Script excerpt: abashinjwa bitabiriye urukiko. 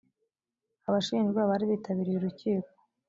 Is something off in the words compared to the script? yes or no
yes